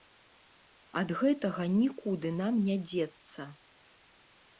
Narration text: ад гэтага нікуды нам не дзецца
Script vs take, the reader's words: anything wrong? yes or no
no